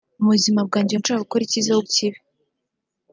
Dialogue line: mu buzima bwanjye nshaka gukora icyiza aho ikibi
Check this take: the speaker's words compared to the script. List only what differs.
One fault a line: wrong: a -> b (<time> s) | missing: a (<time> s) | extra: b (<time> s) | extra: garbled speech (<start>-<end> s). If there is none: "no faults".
no faults